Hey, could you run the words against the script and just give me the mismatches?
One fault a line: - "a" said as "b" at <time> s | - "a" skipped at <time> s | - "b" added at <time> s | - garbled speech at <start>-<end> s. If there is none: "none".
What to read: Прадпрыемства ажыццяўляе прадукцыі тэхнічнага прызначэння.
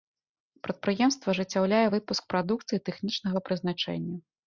- "выпуск" added at 2.0 s